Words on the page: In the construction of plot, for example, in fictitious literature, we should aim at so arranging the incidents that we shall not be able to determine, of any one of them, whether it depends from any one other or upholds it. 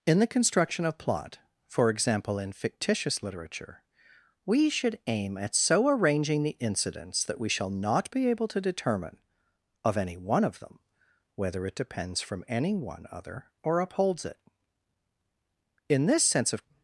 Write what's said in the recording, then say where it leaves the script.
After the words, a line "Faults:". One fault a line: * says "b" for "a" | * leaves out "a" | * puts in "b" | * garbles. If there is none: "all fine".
In the construction of plot, for example, in fictitious literature, we should aim at so arranging the incidents that we shall not be able to determine, of any one of them, whether it depends from any one other or upholds it. In this sense, of
Faults:
* puts in "In this sense of"